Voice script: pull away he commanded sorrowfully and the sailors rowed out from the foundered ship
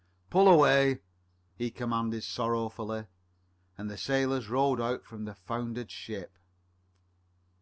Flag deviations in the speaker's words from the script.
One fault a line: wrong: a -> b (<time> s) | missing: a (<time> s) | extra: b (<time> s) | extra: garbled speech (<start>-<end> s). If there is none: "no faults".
no faults